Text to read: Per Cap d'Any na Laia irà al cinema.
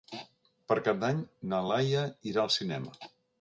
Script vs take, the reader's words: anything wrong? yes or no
no